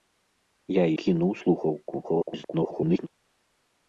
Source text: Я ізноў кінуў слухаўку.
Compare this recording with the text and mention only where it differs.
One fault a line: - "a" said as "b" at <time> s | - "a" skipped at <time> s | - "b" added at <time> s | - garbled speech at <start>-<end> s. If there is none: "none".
- "ізноў" skipped at 0.8 s
- garbled speech at 2.0-3.1 s